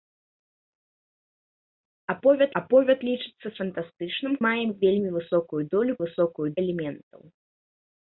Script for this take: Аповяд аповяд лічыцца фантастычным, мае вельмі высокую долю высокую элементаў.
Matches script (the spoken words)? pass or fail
pass